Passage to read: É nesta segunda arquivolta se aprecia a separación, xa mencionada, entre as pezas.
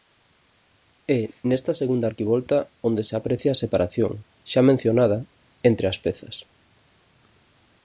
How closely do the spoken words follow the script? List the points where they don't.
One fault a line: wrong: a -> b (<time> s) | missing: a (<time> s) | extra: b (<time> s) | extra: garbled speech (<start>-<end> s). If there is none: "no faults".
extra: onde (2.9 s)